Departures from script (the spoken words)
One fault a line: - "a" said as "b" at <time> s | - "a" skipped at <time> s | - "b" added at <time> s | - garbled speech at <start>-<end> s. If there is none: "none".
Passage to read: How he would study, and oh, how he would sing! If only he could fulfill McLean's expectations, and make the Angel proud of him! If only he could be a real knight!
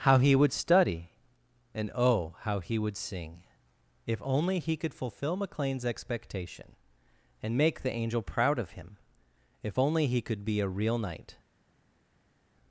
- "expectations" said as "expectation" at 5.8 s